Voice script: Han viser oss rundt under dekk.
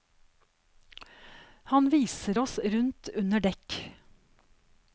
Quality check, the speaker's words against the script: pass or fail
pass